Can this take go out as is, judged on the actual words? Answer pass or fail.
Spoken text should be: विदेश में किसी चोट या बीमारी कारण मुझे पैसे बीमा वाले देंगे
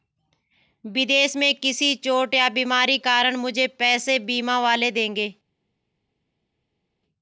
pass